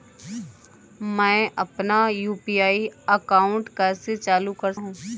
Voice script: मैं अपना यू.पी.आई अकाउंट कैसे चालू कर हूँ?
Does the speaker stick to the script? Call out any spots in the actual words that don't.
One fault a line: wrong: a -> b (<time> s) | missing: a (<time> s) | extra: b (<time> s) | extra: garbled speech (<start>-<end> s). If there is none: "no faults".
no faults